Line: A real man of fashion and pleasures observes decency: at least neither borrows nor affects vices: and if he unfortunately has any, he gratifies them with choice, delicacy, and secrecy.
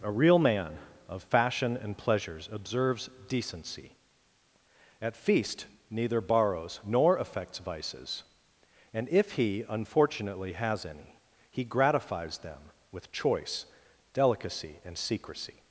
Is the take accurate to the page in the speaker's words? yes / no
no